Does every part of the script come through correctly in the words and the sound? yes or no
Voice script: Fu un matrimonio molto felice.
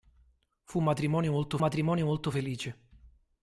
no